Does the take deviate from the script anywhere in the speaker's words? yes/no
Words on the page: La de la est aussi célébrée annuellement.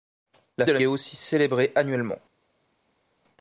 no